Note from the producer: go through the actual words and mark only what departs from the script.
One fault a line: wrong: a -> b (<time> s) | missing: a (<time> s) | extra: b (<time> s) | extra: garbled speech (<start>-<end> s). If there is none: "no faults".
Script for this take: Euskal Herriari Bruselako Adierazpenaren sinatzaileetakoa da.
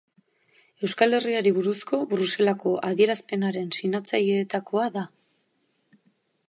extra: buruzko (1.6 s)